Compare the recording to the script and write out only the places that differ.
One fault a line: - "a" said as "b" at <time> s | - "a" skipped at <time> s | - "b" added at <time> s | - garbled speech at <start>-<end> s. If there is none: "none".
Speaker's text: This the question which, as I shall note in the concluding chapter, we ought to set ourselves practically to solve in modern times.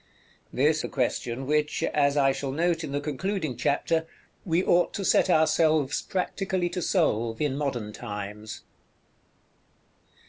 none